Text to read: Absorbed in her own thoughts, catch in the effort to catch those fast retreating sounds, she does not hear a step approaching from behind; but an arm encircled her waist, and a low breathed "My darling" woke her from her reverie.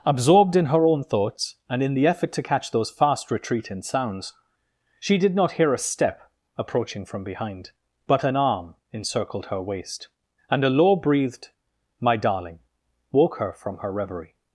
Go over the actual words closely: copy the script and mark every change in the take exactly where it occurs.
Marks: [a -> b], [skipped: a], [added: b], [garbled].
Absorbed in her own thoughts, [catch -> and] in the effort to catch those fast retreating sounds, she [does -> did] not hear a step approaching from behind; but an arm encircled her waist, and a low breathed "My darling" woke her from her reverie.